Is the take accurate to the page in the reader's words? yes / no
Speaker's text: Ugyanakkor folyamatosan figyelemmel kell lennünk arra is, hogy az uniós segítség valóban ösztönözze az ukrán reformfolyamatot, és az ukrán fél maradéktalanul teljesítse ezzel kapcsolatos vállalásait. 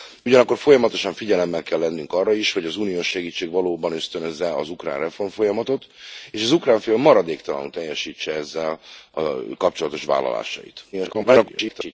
no